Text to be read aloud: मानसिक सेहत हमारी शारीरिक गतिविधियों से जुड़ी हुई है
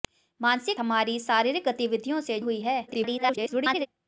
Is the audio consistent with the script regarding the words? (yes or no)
no